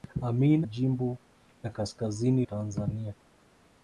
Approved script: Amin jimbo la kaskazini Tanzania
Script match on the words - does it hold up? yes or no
yes